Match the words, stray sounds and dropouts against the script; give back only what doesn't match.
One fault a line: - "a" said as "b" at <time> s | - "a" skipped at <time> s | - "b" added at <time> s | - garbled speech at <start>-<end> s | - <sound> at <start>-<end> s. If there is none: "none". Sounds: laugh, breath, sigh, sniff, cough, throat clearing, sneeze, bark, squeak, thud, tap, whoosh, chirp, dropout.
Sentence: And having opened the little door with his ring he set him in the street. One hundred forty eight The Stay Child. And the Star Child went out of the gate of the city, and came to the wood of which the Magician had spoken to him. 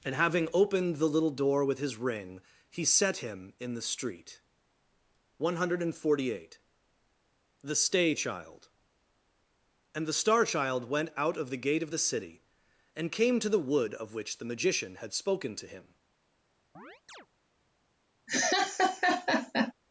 - chirp at 16.7-17.3 s
- laugh at 18.3-19.7 s